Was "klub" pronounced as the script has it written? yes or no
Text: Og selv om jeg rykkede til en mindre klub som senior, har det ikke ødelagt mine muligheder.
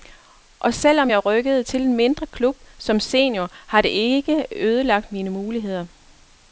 yes